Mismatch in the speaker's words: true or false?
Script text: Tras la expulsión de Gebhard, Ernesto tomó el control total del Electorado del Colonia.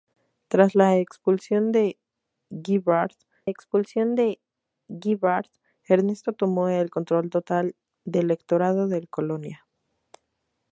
true